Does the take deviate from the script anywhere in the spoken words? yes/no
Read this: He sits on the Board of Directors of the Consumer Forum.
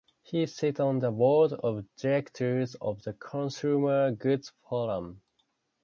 yes